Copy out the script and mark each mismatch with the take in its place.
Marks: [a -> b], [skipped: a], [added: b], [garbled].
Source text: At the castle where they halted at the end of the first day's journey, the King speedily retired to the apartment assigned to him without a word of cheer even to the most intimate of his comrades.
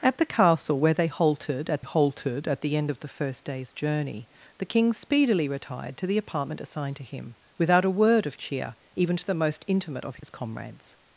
At the castle where they halted at [added: halted at] the end of the first day's journey, the King speedily retired to the apartment assigned to him without a word of cheer even to the most intimate of his comrades.